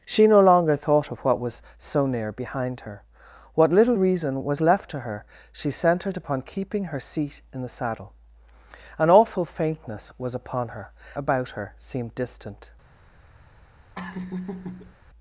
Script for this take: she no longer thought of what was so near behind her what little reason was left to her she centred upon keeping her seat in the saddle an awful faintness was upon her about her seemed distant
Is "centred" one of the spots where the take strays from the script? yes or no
no